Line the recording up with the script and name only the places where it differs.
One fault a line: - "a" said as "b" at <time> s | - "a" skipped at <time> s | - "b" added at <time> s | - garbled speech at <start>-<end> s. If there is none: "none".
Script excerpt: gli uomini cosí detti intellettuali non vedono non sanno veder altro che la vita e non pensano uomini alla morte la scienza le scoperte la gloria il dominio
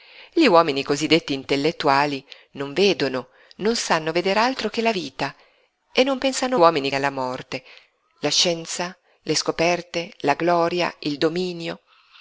none